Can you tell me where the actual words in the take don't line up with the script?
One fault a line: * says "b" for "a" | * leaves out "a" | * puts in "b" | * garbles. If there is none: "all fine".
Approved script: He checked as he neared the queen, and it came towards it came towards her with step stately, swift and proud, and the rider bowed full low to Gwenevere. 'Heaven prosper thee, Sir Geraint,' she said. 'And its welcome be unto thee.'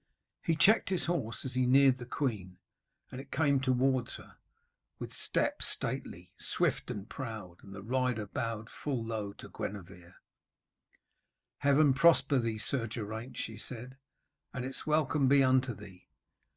* puts in "his horse"
* leaves out "it came towards"